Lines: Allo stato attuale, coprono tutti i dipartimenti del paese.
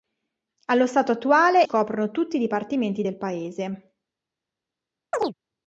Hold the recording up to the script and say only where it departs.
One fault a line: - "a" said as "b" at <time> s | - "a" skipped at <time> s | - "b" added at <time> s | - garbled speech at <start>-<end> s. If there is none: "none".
none